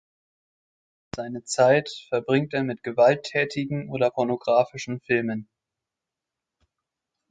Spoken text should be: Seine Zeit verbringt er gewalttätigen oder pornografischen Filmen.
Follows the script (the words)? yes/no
no